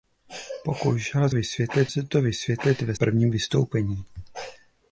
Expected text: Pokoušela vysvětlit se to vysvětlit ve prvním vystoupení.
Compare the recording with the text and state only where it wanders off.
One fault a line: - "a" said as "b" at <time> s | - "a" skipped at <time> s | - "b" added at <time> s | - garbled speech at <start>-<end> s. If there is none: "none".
none